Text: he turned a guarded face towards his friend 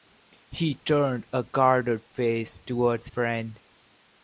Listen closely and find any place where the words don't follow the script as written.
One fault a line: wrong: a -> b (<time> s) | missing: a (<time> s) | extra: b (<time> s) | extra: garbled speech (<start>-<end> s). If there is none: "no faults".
missing: his (3.1 s)